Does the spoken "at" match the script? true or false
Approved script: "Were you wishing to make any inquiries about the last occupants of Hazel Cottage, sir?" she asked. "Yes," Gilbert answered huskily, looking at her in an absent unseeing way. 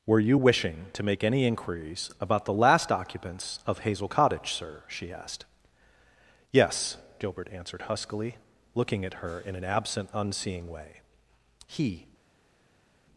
true